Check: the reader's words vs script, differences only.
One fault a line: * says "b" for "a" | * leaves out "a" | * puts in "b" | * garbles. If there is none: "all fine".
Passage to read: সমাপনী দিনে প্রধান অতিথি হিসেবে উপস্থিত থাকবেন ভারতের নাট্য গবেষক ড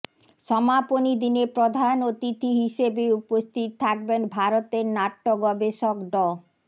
all fine